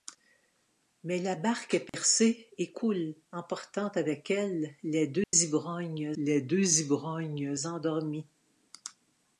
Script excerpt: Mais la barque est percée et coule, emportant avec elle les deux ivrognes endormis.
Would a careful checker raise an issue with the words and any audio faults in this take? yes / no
yes